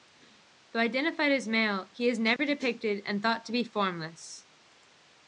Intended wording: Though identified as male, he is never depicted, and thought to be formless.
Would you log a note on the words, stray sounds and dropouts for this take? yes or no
yes